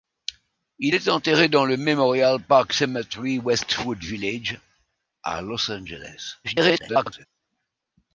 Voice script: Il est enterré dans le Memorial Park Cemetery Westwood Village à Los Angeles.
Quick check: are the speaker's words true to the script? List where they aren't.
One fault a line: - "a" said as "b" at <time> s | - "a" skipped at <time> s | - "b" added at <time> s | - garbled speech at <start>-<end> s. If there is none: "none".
- garbled speech at 6.4-7.3 s